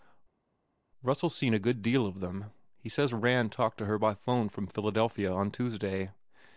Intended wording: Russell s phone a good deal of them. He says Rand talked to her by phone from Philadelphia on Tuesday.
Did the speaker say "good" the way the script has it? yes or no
yes